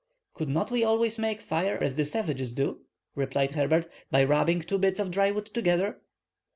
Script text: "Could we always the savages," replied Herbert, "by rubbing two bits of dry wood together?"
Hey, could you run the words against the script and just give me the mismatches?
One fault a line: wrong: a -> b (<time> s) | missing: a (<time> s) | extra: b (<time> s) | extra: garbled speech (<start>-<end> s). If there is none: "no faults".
extra: not (0.5 s)
extra: make fire as (1.2 s)
extra: do (2.5 s)